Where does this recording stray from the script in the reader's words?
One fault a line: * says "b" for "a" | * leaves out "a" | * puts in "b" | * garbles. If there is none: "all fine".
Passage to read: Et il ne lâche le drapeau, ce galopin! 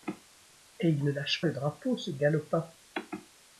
all fine